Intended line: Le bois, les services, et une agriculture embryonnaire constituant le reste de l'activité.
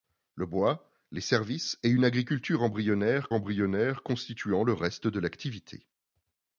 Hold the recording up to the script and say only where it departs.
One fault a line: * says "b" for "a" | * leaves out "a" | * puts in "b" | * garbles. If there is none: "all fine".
* puts in "embryonnaire"